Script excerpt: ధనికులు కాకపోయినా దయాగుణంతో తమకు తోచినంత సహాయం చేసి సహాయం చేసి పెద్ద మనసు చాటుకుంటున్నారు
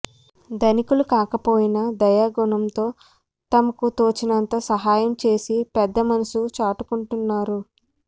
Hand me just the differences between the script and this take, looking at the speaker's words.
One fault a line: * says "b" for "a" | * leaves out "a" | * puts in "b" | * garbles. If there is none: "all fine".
* leaves out "సహాయం చేసి"